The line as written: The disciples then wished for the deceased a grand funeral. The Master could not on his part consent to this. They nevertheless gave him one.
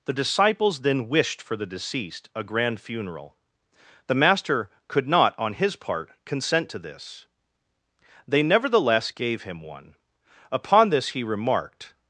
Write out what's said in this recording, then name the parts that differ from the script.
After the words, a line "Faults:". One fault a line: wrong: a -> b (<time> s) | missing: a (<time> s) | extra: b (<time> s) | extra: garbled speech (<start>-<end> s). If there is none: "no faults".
The disciples then wished for the deceased a grand funeral. The Master could not on his part consent to this. They nevertheless gave him one. Upon this he remarked
Faults:
extra: Upon this he remarked (10.5 s)